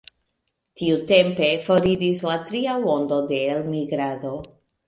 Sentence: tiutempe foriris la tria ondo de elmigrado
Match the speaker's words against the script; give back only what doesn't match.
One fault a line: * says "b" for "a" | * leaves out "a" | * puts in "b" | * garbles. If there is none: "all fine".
all fine